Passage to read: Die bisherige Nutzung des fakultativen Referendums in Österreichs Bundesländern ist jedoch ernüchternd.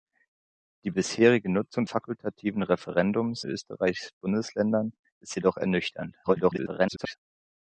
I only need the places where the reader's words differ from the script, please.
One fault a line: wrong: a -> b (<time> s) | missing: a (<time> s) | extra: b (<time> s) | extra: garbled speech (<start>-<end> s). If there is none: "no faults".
missing: des (1.9 s)
missing: in (3.4 s)
extra: garbled speech (6.2-7.1 s)